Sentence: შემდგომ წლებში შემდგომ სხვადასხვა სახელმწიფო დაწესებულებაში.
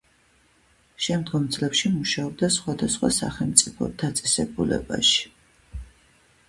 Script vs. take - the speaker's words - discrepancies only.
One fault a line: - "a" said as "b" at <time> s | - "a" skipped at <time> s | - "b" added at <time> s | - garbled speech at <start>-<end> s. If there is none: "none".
- "შემდგომ" said as "მუშაობდა" at 2.0 s